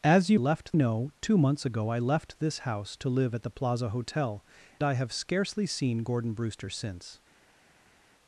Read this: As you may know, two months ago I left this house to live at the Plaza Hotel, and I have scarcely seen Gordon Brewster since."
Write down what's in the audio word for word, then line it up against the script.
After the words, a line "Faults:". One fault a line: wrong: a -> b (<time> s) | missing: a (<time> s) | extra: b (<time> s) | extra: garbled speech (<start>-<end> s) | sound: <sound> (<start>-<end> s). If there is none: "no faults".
As you left know, two months ago I left this house to live at the Plaza Hotel, I have scarcely seen Gordon Brewster since."
Faults:
wrong: may -> left (0.3 s)
missing: and (4.4 s)